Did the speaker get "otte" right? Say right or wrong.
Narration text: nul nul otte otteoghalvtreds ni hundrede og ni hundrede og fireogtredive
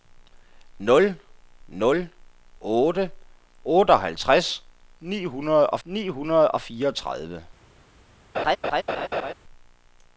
right